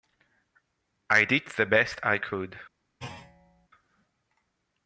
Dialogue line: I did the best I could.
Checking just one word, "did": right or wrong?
right